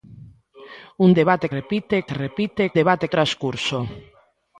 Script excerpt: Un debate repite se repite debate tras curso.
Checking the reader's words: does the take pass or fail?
pass